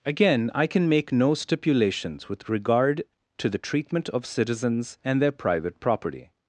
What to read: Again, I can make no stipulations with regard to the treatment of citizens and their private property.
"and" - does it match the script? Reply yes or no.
yes